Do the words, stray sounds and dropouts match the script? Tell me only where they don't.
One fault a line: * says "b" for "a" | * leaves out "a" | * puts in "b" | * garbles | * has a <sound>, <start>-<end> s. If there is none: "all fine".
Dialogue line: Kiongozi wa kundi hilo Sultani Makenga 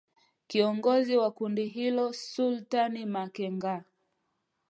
all fine